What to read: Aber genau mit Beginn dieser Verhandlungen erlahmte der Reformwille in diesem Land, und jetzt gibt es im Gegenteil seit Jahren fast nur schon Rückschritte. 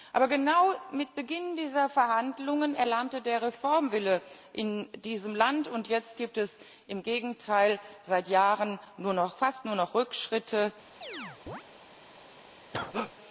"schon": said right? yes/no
no